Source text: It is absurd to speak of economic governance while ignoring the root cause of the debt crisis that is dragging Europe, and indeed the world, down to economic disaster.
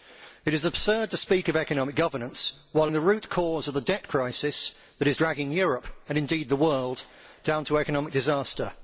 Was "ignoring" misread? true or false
true